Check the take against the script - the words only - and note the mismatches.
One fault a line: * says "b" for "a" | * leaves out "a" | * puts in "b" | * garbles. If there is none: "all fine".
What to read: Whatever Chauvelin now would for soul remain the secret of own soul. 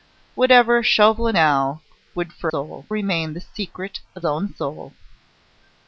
all fine